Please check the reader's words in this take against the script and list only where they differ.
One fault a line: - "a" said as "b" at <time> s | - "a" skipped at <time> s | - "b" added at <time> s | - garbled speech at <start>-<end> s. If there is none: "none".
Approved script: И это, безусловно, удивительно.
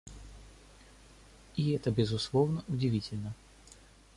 none